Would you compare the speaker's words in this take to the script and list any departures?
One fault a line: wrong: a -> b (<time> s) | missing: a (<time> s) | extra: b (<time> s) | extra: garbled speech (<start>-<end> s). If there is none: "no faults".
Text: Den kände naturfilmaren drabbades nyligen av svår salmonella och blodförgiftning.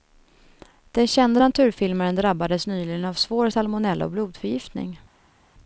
no faults